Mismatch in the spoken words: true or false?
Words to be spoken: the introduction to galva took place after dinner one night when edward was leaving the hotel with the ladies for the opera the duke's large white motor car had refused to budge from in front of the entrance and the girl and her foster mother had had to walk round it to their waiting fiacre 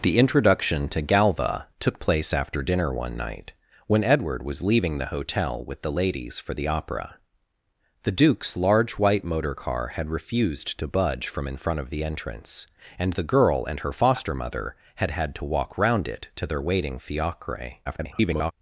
true